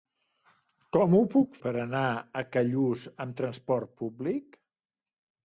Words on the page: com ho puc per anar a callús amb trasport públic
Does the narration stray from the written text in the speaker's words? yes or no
no